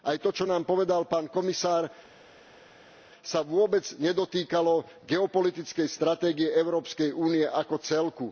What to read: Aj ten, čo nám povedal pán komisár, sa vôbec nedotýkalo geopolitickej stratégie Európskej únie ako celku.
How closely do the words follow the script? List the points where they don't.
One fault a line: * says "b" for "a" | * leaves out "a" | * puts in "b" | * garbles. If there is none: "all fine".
* says "to" for "ten"